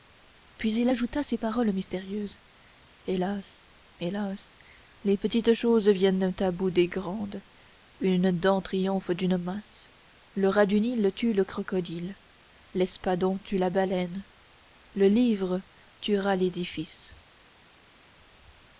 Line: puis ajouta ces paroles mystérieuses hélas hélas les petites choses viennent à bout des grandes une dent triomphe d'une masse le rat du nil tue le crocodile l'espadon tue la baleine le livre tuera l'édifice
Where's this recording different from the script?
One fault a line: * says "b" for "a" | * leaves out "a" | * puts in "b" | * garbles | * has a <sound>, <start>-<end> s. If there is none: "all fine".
* puts in "il"